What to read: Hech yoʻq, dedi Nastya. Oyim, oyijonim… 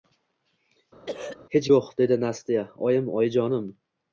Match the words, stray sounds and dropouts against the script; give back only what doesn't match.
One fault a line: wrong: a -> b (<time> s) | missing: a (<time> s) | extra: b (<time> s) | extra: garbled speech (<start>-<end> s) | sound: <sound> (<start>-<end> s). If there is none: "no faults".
sound: throat clearing (1.1-1.4 s)